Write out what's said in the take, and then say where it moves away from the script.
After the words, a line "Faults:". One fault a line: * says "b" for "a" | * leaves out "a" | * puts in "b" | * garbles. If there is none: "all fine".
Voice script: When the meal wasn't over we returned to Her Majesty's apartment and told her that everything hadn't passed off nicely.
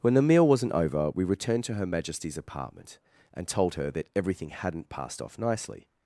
When the meal wasn't over we returned to Her Majesty's apartment and told her that everything hadn't passed off nicely.
Faults:
all fine